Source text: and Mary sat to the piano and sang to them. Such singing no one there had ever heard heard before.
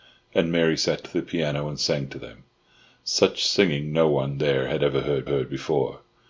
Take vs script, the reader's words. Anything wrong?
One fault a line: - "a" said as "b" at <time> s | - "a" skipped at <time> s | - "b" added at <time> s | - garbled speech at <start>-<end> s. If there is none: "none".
none